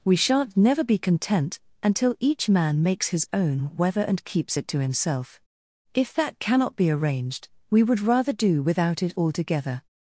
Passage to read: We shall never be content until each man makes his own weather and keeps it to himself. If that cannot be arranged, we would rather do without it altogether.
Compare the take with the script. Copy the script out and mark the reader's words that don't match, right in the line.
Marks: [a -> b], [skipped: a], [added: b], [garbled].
We [shall -> shan't] never be content until each man makes his own weather and keeps it to himself. If that cannot be arranged, we would rather do without it altogether.